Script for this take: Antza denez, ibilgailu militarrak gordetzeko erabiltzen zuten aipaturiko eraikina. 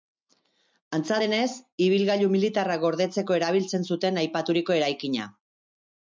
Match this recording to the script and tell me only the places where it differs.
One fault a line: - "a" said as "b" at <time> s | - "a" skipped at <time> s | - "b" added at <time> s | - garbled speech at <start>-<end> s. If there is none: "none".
none